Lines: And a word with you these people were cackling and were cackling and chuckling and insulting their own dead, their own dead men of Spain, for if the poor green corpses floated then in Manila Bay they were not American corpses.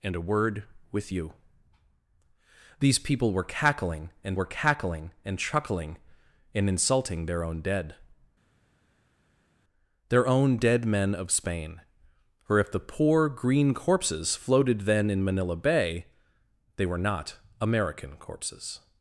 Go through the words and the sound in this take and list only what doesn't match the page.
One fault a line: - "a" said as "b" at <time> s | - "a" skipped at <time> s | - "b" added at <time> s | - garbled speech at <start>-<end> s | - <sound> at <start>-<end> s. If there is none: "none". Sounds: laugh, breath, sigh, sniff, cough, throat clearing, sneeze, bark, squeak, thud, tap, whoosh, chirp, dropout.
none